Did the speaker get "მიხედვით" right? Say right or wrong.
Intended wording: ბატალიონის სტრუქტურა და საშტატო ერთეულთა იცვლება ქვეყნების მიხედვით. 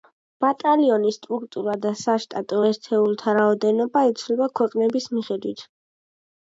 right